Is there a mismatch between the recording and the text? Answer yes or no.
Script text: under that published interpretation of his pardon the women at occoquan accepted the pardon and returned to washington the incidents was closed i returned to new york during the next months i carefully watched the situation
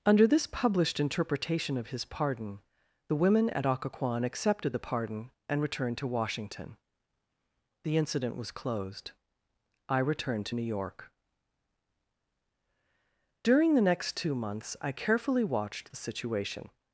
yes